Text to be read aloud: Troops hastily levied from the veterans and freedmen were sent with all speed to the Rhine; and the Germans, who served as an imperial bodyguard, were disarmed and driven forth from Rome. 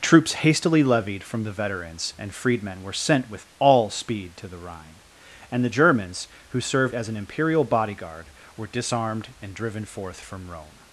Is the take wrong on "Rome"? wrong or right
right